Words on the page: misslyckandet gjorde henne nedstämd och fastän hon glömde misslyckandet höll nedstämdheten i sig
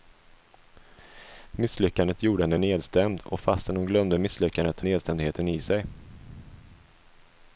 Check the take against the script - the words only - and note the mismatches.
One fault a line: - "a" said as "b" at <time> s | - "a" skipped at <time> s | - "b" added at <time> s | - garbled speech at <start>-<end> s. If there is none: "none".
- "höll" skipped at 4.8 s